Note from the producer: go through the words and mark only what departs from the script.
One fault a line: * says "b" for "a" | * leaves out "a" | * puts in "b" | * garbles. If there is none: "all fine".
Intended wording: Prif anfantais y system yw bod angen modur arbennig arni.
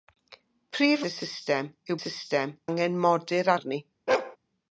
* leaves out "anfantais"
* says "system" for "bod"
* leaves out "arbennig"